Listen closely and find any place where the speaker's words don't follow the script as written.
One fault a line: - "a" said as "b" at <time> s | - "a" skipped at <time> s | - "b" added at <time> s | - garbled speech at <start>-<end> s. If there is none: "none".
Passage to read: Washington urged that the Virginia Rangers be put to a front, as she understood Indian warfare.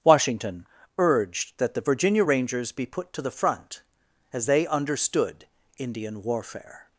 - "a" said as "the" at 3.2 s
- "she" said as "they" at 4.5 s